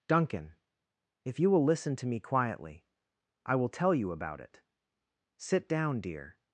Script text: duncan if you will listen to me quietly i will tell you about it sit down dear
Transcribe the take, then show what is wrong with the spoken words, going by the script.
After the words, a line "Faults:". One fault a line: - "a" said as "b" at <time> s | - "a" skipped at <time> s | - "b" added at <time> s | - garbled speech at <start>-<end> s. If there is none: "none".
duncan if you will listen to me quietly i will tell you about it sit down dear
Faults:
none